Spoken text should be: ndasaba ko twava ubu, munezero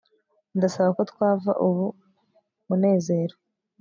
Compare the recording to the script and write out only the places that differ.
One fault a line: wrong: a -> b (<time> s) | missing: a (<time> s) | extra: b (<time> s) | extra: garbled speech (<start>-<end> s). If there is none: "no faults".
no faults